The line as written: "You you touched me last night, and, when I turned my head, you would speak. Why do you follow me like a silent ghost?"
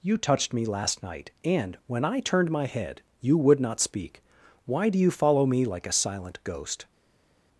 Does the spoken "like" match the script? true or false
true